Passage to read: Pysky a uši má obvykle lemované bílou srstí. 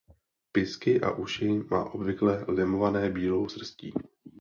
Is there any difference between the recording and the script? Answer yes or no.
no